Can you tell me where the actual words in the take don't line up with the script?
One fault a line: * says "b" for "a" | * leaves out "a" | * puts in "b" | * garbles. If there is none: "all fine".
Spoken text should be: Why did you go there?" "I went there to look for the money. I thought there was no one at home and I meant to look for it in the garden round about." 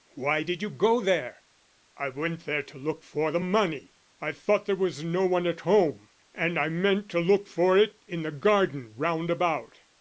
all fine